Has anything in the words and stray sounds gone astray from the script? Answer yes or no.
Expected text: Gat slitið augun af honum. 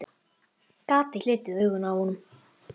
no